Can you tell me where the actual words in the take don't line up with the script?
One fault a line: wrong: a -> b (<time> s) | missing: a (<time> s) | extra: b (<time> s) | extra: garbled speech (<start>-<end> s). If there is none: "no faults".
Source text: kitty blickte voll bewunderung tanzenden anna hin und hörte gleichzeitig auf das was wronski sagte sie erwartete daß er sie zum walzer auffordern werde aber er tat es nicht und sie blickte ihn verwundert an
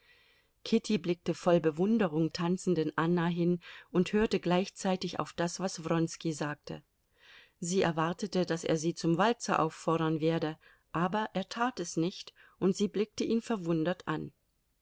no faults